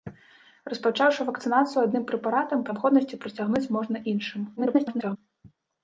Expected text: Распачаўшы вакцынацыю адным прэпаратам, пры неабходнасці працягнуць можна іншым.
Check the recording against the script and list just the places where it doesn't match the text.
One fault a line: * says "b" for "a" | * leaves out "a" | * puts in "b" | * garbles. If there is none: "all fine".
* leaves out "пры"
* garbles